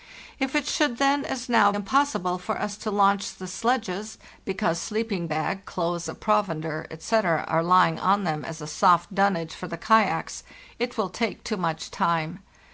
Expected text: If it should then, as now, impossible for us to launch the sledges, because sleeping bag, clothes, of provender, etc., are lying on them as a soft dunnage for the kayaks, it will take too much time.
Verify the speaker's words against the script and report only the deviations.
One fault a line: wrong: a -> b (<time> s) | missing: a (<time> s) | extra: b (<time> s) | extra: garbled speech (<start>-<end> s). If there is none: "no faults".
no faults